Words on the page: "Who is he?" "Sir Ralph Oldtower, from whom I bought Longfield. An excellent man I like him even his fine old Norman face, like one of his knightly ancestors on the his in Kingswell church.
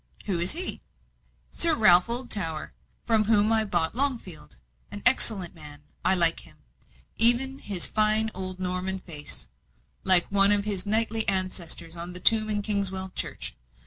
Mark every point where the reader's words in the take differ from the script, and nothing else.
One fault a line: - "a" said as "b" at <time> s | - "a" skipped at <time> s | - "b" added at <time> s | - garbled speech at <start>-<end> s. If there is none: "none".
- "his" said as "tomb" at 12.2 s